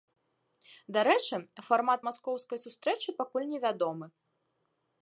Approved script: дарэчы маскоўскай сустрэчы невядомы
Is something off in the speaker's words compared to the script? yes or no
yes